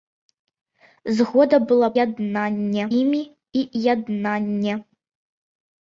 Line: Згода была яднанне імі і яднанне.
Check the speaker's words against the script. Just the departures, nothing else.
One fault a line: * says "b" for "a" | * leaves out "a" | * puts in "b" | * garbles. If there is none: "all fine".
all fine